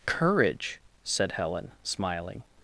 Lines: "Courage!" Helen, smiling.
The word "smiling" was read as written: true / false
true